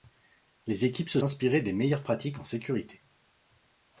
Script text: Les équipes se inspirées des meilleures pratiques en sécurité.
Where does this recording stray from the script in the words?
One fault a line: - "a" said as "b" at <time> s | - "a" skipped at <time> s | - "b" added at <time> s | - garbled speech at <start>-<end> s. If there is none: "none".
none